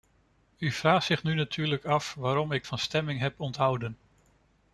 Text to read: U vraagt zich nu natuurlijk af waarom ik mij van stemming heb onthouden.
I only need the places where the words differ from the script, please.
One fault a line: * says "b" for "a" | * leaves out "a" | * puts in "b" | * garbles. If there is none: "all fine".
* leaves out "mij"